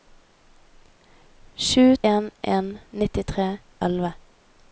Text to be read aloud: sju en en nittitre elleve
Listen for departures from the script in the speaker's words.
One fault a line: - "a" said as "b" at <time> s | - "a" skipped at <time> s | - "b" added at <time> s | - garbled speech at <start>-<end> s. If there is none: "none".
none